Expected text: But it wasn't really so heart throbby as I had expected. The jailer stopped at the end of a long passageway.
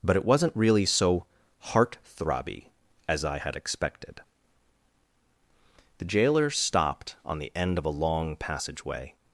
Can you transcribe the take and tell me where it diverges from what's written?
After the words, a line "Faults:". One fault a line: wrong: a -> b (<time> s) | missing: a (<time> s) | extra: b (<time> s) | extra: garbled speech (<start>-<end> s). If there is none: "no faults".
But it wasn't really so heart throbby as I had expected. The jailer stopped on the end of a long passageway.
Faults:
wrong: at -> on (7.3 s)